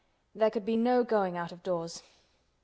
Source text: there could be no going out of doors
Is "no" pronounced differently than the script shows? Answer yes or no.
no